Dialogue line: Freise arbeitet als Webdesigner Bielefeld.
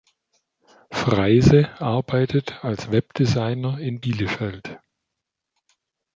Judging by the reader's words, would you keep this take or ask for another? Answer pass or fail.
fail